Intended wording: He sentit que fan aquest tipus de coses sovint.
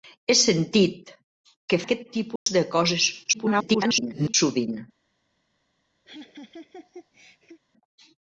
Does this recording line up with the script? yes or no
no